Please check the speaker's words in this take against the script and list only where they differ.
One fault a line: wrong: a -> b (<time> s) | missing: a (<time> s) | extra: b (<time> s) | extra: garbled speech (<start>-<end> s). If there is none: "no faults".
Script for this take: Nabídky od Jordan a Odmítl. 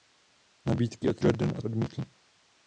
no faults